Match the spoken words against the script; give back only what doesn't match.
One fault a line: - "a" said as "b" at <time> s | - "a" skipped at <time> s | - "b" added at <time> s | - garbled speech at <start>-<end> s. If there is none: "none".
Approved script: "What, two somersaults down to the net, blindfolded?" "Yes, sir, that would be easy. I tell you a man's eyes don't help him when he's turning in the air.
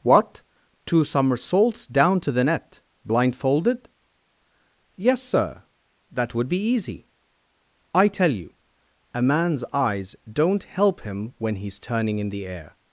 none